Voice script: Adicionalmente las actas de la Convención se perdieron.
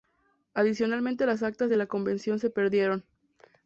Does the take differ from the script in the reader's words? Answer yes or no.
no